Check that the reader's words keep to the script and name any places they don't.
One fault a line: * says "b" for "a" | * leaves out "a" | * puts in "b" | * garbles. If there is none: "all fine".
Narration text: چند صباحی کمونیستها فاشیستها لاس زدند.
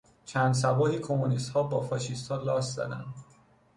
* puts in "با"